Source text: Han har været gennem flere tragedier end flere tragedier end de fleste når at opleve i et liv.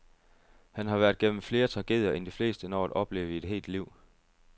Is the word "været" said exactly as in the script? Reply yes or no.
yes